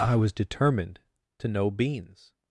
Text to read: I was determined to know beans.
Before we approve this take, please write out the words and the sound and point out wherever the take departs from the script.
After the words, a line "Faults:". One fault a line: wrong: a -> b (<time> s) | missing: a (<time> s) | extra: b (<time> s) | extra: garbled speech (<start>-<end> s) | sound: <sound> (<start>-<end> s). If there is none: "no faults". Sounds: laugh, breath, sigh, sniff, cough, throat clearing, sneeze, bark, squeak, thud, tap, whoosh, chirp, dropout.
I was determined to know beans.
Faults:
no faults